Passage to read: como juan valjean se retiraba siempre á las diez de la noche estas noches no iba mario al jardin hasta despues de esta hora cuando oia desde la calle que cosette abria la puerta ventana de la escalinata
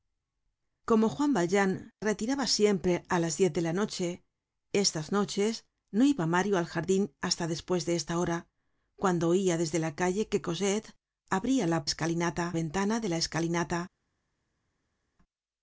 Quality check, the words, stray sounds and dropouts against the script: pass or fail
fail